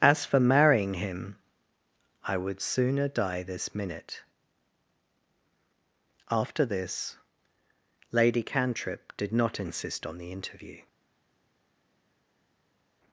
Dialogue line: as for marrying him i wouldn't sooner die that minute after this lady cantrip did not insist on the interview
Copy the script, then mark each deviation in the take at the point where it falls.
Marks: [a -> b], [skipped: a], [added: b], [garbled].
as for marrying him i [wouldn't -> would] sooner die [that -> this] minute after this lady cantrip did not insist on the interview